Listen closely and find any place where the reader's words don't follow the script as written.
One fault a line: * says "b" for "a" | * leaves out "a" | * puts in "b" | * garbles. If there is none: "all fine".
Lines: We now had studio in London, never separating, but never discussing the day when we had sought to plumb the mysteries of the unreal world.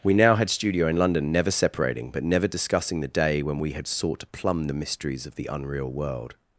all fine